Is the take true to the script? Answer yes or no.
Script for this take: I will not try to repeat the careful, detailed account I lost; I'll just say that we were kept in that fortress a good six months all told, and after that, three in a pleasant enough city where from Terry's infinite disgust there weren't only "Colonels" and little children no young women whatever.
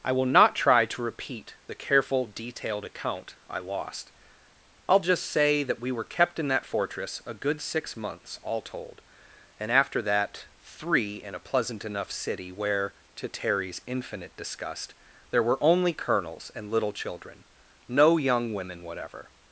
no